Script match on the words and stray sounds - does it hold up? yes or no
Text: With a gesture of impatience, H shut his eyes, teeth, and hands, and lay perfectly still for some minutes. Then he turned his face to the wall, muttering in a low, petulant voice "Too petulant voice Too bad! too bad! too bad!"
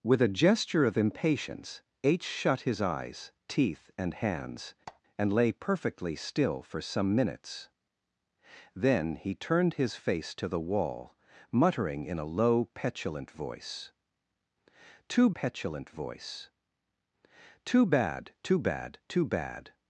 no